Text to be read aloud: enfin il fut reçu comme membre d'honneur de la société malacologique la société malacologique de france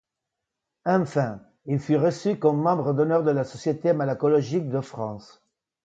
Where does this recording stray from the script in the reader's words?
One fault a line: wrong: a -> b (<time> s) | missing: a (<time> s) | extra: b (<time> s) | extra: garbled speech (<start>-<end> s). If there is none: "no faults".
missing: la société malacologique (4.7 s)